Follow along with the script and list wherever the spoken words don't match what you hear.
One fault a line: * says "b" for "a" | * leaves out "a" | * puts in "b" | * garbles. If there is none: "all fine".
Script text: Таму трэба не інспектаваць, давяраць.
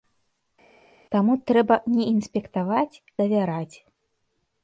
all fine